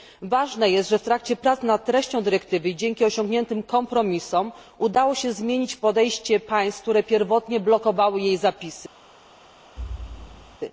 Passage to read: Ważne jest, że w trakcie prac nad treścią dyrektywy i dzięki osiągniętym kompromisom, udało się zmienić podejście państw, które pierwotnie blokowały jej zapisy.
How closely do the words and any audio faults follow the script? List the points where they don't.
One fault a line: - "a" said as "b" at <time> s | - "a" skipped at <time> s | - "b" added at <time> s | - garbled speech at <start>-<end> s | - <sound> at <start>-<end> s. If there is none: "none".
- thud at 9.8-10.6 s